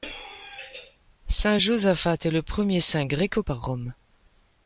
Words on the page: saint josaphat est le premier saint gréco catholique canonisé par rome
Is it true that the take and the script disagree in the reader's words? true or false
true